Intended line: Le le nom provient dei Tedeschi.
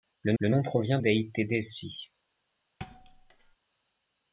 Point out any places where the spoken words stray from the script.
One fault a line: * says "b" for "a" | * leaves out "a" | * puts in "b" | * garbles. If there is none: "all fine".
all fine